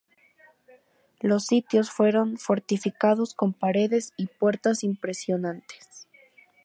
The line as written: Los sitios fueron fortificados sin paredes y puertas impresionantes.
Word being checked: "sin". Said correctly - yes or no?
no